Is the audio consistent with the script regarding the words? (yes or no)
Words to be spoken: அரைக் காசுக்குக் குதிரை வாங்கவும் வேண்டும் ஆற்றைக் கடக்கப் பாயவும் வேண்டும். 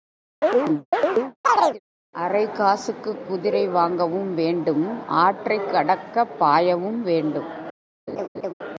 yes